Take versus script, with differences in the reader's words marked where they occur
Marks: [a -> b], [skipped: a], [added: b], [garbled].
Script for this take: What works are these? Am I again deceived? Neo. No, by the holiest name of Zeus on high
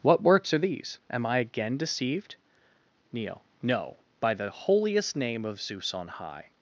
What works are these? Am I again deceived? Neo. No, by the holiest name of Zeus on high